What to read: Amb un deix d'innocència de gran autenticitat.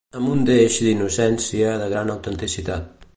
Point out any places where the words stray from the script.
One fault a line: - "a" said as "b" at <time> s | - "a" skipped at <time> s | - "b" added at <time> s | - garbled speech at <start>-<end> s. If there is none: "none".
none